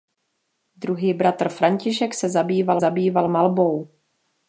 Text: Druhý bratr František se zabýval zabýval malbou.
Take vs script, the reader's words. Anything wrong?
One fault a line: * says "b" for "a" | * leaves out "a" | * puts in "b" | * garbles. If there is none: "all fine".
all fine